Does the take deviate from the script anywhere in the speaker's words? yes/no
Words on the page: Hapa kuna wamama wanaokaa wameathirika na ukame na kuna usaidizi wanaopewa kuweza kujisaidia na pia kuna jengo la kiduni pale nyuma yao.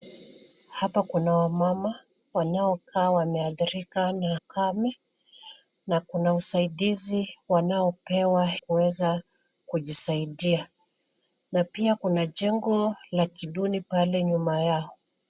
no